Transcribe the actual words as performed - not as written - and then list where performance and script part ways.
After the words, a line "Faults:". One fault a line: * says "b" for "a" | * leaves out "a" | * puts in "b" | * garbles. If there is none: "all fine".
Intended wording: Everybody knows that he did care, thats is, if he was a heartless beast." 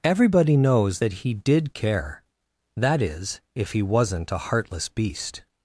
Everybody knows that he did care, that is, if he wasn't a heartless beast."
Faults:
* says "that" for "thats"
* says "wasn't" for "was"